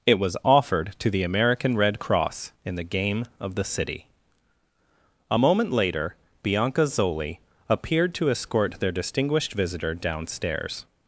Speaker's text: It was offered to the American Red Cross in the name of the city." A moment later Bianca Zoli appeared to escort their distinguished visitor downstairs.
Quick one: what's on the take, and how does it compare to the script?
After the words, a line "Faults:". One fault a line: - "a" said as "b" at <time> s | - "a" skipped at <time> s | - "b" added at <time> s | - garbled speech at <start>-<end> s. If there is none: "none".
It was offered to the American Red Cross in the game of the city." A moment later Bianca Zoli appeared to escort their distinguished visitor downstairs.
Faults:
- "name" said as "game" at 2.8 s